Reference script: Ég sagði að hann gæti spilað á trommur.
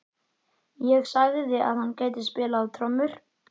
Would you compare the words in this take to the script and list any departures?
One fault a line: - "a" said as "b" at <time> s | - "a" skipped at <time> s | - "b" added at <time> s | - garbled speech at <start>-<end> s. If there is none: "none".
none